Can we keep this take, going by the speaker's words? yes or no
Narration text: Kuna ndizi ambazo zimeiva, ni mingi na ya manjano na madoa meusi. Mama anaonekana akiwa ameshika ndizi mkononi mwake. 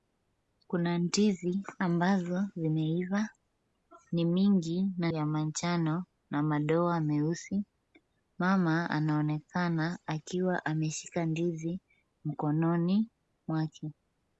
yes